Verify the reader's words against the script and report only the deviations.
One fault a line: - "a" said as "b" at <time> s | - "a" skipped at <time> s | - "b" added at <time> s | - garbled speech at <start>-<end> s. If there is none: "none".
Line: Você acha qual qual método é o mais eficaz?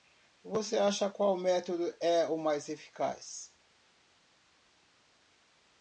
- "qual" skipped at 1.4 s